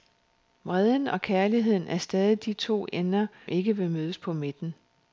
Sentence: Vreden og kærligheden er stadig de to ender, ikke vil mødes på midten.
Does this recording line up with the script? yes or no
yes